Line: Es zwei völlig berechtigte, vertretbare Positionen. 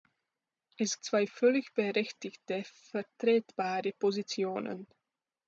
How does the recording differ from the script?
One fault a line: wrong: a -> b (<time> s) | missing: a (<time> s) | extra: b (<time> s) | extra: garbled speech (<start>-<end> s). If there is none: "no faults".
no faults